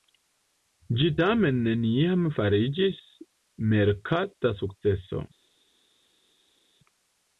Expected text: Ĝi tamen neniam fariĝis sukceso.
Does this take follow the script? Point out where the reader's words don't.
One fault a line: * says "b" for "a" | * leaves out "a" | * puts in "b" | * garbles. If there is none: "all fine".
* puts in "merkata"